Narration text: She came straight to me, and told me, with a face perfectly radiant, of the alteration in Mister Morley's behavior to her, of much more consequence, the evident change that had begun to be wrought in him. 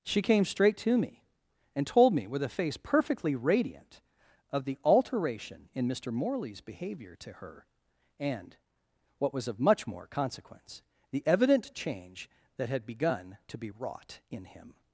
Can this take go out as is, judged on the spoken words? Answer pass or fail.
fail